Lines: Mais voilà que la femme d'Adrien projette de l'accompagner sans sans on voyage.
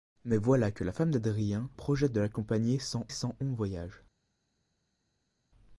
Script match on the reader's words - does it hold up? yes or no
yes